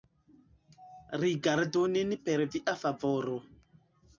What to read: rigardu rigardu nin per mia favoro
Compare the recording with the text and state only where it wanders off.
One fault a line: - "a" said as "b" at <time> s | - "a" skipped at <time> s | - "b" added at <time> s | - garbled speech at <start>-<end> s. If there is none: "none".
- "rigardu" skipped at 1.9 s
- "mia" said as "via" at 2.5 s